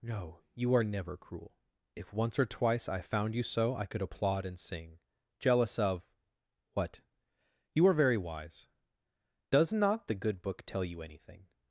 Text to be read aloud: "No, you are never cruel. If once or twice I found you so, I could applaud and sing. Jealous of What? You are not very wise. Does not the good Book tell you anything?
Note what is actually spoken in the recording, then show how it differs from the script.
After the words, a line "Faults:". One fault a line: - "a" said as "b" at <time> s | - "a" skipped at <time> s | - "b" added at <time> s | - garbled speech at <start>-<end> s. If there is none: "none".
"No, you are never cruel. If once or twice I found you so, I could applaud and sing. Jealous of What? You are very wise. Does not the good Book tell you anything?
Faults:
- "not" skipped at 7.9 s